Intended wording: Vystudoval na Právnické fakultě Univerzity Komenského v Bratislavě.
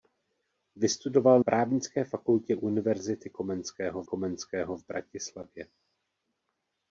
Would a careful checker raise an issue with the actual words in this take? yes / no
yes